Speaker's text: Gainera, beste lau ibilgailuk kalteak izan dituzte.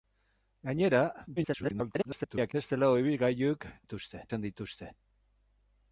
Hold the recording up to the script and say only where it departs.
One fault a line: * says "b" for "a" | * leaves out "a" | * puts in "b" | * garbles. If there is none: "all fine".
* garbles
* says "dituzte" for "kalteak"